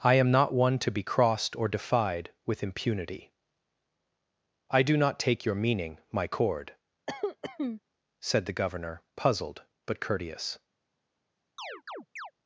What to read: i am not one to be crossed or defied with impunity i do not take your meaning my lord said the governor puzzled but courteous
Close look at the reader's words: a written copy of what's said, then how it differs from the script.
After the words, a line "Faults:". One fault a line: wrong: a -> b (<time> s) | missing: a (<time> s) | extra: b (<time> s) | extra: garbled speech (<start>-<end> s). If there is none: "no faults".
i am not one to be crossed or defied with impunity i do not take your meaning my cord said the governor puzzled but courteous
Faults:
wrong: lord -> cord (6.3 s)